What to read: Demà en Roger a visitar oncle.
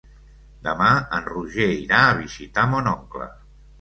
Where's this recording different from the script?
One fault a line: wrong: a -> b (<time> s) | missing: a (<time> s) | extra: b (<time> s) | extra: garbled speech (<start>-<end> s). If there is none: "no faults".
extra: irà (1.8 s)
extra: mon (2.7 s)